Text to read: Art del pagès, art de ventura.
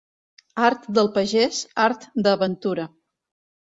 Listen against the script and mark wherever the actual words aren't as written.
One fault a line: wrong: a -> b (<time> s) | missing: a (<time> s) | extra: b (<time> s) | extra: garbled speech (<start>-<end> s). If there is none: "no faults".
no faults